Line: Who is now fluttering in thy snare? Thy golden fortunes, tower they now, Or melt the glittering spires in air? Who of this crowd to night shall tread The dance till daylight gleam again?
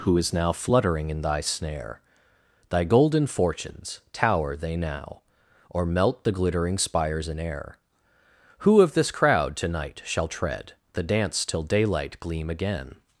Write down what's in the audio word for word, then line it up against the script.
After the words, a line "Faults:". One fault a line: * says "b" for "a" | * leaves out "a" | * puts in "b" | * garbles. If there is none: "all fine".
Who is now fluttering in thy snare? Thy golden fortunes, tower they now, Or melt the glittering spires in air? Who of this crowd to night shall tread The dance till daylight gleam again?
Faults:
all fine